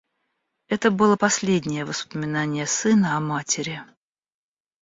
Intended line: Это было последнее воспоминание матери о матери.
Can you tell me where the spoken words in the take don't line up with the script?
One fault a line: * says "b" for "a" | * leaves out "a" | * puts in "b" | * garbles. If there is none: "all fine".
* says "сына" for "матери"